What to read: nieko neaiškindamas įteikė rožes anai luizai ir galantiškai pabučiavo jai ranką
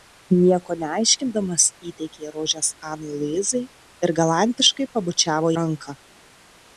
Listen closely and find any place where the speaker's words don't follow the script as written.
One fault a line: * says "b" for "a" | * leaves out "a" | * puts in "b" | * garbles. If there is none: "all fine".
* leaves out "jai"